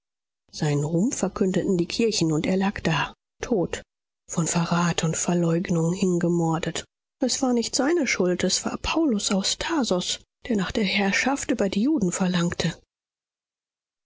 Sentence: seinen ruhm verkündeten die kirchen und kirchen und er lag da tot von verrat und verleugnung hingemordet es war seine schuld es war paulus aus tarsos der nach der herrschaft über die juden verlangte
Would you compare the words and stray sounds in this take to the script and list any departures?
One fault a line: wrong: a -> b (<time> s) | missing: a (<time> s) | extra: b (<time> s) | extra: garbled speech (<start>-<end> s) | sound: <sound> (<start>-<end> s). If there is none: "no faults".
missing: kirchen und (2.5 s)
extra: nicht (7.5 s)